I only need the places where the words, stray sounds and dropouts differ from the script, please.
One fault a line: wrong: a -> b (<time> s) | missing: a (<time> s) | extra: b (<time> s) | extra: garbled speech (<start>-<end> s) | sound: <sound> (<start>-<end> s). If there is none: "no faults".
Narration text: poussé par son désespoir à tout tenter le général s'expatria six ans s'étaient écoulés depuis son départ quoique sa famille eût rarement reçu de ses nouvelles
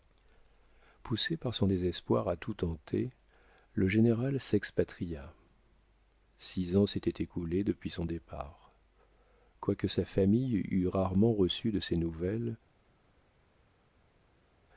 no faults